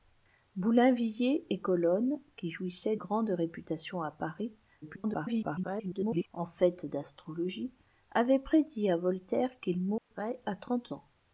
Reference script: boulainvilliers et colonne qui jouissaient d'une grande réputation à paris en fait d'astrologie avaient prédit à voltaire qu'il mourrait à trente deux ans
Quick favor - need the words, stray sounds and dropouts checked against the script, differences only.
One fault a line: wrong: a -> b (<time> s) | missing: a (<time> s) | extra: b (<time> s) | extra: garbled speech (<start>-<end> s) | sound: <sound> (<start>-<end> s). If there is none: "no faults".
missing: d'une (3.0 s)
extra: garbled speech (4.8-6.3 s)
sound: dropout (10.0-10.1 s)
missing: deux (10.9 s)